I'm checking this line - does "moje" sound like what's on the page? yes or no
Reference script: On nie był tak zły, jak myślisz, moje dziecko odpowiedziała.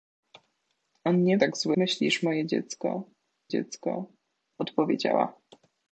yes